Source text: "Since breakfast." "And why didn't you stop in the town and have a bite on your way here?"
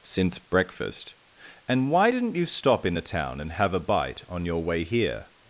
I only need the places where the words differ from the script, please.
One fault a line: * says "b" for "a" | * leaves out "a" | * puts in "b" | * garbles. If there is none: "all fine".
all fine